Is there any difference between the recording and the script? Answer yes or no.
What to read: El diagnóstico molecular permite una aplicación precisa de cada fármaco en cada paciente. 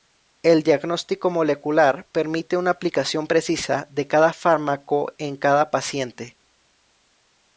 no